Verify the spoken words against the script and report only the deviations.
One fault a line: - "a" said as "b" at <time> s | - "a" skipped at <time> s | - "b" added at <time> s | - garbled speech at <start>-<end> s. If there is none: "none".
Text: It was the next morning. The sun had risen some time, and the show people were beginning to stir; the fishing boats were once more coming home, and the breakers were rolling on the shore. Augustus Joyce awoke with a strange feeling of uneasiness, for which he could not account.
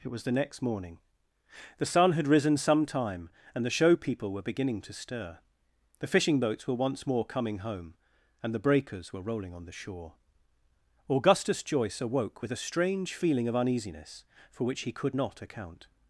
none